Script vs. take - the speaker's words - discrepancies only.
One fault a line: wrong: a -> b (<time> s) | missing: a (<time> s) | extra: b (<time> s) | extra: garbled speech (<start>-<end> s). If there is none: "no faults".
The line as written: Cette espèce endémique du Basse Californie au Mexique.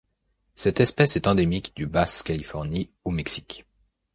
extra: est (1.1 s)